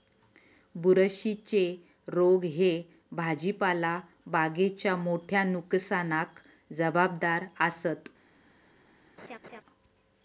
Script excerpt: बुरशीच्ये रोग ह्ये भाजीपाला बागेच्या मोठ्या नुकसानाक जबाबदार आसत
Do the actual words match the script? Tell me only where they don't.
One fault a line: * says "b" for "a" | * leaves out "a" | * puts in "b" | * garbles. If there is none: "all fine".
all fine